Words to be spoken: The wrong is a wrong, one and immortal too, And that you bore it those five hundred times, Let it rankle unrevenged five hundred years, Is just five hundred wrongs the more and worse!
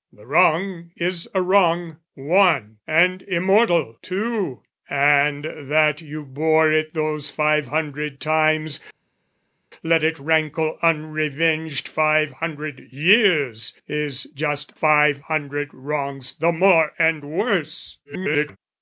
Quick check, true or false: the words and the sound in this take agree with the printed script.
false